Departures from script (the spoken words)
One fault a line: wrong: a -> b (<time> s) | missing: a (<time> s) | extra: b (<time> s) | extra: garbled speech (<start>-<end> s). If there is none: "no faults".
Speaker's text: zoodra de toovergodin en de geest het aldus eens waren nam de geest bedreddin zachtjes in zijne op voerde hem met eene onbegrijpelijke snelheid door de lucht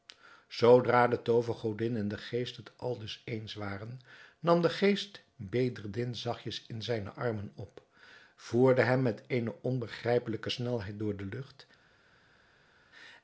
extra: armen (7.1 s)